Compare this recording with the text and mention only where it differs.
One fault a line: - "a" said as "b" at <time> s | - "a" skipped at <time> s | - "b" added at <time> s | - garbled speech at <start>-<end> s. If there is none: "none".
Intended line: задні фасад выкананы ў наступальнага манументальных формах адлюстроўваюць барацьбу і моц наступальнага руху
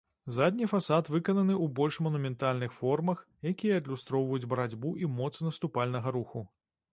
- "наступальнага" said as "больш" at 1.8 s
- "якія" added at 3.5 s